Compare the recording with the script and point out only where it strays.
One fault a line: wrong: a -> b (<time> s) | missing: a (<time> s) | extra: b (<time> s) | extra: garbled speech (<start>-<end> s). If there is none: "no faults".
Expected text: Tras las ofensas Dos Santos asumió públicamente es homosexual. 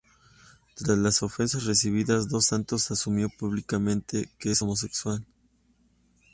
extra: recibidas (1.6 s)
extra: que (4.4 s)